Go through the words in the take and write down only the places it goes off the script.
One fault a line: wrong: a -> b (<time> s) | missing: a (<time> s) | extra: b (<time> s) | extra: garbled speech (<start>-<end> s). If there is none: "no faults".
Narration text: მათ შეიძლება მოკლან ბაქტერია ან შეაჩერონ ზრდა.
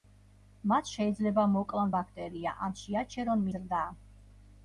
no faults